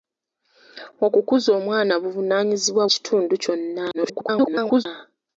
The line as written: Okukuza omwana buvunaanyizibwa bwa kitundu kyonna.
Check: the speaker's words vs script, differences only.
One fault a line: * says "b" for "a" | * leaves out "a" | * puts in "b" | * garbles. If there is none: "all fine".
* leaves out "bwa"
* garbles